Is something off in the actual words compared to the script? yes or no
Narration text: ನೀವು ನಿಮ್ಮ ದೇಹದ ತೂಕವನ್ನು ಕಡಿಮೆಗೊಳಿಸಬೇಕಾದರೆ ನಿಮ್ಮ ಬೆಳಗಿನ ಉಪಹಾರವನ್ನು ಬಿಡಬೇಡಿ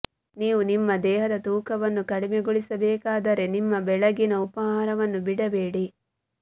no